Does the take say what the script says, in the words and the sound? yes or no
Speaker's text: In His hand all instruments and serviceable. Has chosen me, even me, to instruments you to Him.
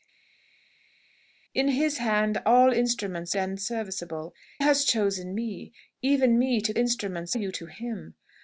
yes